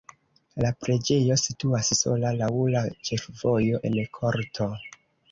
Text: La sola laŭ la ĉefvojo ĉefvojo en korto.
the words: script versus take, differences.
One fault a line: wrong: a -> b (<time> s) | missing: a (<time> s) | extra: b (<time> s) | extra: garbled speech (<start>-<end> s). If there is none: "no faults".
extra: preĝejo situas (0.8 s)
missing: ĉefvojo (3.8 s)